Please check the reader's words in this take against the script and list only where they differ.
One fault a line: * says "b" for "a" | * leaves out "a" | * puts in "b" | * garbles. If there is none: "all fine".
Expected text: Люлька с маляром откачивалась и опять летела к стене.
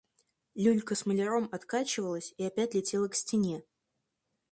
all fine